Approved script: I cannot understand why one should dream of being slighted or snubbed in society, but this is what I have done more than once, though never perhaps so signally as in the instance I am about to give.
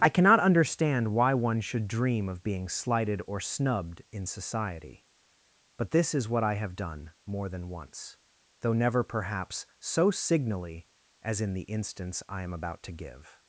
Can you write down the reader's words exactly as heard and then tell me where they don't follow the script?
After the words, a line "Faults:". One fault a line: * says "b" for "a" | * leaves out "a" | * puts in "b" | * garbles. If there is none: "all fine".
I cannot understand why one should dream of being slighted or snubbed in society, but this is what I have done more than once, though never perhaps so signally as in the instance I am about to give.
Faults:
all fine